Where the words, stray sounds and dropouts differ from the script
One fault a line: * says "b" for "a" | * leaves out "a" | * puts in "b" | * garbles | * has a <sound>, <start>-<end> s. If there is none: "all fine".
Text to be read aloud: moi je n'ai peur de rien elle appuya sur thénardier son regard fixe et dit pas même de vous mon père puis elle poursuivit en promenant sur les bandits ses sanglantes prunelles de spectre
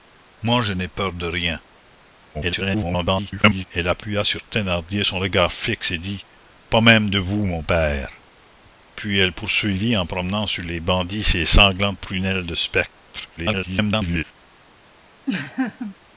* garbles
* garbles
* has a laugh, 15.3-16.0 s